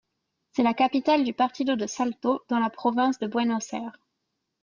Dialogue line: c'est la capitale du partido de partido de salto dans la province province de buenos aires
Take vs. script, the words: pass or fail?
fail